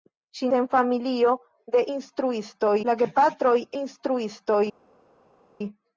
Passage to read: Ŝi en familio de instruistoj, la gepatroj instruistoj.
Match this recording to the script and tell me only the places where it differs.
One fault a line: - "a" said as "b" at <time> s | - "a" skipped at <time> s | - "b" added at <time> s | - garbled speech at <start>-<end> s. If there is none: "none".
none